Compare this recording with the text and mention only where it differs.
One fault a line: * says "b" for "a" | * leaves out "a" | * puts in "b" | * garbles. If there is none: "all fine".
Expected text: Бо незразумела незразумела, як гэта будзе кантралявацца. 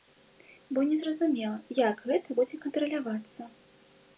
* leaves out "незразумела"